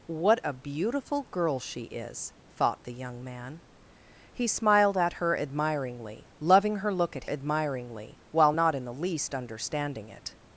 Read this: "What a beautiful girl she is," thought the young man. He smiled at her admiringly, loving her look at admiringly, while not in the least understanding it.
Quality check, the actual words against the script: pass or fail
pass